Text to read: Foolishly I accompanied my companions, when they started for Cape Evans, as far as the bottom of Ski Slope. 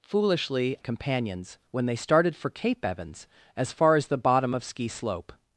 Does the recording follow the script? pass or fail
fail